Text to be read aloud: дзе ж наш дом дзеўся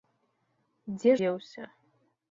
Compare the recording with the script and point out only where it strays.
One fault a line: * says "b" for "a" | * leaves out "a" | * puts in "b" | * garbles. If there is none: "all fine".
* leaves out "ж наш дом"